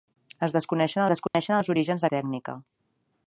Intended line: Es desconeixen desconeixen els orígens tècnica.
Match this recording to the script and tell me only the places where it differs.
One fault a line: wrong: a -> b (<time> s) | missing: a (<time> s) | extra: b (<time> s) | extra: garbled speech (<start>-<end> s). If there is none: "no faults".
no faults